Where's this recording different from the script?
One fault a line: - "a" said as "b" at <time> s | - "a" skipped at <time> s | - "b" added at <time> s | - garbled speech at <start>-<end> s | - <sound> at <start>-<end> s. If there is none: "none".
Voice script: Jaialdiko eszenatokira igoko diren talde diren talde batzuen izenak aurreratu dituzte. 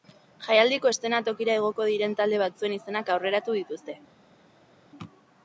- "diren talde" skipped at 2.4 s